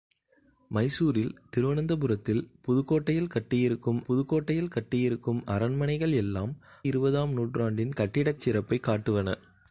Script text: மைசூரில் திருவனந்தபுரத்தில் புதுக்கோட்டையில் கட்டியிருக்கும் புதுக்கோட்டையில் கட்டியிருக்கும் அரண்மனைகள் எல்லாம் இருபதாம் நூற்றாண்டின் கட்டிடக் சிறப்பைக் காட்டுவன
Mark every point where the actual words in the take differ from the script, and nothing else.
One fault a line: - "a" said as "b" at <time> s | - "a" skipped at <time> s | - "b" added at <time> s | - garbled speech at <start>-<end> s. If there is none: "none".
none